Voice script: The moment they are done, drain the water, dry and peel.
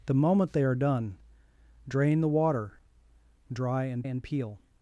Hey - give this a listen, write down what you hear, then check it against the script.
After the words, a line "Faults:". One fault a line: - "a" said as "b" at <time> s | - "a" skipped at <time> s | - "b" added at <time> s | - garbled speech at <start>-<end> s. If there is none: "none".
The moment they are done, drain the water, dry and and peel.
Faults:
- "and" added at 4.0 s